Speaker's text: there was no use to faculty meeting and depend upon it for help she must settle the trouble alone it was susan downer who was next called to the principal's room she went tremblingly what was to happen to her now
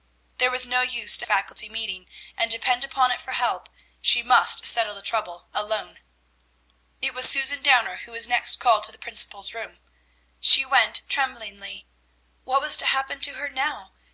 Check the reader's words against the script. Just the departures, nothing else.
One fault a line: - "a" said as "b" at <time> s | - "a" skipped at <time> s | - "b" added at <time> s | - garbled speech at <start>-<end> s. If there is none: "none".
none